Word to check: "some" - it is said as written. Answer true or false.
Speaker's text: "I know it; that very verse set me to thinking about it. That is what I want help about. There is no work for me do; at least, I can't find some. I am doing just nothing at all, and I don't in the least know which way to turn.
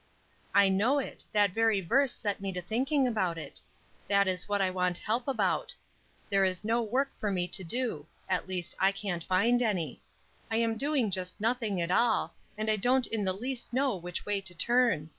false